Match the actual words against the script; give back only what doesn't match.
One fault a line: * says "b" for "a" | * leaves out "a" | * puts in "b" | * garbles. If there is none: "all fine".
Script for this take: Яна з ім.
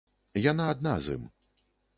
* puts in "адна"